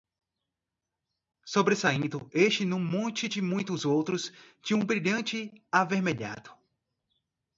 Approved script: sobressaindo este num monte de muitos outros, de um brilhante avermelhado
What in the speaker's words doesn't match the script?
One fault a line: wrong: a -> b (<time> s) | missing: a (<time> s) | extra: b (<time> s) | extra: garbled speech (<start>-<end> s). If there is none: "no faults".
no faults